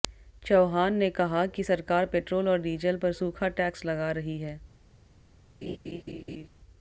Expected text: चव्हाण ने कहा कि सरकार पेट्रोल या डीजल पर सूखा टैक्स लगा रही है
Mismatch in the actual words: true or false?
true